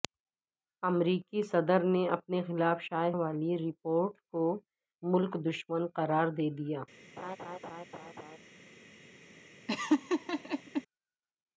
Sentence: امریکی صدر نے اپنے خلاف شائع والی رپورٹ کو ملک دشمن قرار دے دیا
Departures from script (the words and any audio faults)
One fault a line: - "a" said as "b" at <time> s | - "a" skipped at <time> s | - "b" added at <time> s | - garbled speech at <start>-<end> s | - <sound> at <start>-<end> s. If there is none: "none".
- laugh at 7.2-8.4 s
- laugh at 9.7-10.8 s